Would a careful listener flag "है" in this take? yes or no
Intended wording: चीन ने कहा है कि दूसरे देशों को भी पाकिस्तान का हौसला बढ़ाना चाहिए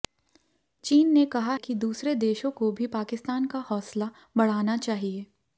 yes